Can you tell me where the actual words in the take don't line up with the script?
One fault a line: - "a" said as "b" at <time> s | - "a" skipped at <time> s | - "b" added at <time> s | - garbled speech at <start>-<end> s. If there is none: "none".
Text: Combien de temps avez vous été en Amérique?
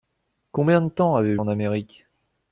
- "vous été" skipped at 1.4 s